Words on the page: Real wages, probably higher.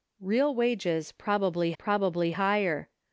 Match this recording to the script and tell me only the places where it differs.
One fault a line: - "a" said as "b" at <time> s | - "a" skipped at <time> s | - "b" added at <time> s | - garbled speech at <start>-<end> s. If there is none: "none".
- "probably" added at 1.7 s